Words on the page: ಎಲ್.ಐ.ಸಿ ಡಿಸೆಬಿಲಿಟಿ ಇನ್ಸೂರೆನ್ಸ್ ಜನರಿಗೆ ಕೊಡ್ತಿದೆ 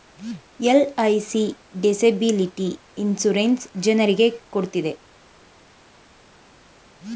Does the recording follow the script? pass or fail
pass